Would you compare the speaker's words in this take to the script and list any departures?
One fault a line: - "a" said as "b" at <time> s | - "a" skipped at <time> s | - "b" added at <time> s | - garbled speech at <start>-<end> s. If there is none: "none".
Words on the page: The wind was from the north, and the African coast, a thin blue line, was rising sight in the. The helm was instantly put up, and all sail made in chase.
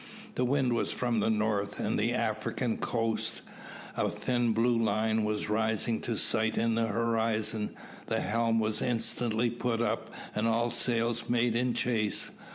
- "to" added at 6.0 s
- "horizon" added at 6.9 s